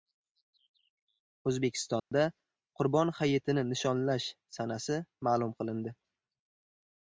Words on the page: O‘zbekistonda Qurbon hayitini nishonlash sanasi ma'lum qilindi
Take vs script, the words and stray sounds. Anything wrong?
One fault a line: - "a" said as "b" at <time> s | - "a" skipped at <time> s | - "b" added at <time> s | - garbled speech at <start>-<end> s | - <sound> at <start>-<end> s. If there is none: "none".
- dropout at 2.0-2.1 s